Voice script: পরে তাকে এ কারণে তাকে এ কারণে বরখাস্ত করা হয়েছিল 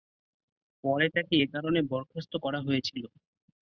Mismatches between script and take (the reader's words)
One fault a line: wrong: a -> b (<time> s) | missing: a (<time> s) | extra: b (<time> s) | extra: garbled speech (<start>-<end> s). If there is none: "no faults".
missing: তাকে এ কারণে (1.8 s)